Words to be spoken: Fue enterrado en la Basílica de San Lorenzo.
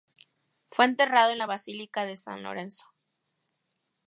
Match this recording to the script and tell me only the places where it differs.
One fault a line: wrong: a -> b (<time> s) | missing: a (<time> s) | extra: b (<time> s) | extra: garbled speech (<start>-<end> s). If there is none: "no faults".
no faults